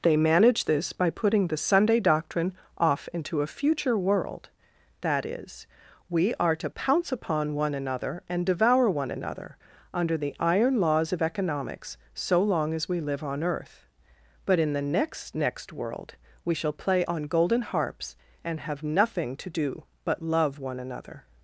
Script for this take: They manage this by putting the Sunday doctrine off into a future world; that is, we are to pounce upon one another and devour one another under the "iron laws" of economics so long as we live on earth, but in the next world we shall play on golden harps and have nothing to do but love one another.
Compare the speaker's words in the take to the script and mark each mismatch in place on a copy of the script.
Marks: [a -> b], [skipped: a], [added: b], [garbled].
They manage this by putting the Sunday doctrine off into a future world; that is, we are to pounce upon one another and devour one another under the "iron laws" of economics so long as we live on earth, but in the next [added: next] world we shall play on golden harps and have nothing to do but love one another.